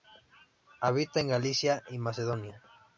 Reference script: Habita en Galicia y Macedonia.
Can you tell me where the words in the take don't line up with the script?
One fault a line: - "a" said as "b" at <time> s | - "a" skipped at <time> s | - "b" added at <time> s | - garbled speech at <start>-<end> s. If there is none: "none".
none